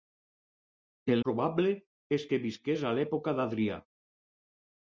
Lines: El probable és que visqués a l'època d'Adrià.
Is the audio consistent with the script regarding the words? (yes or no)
yes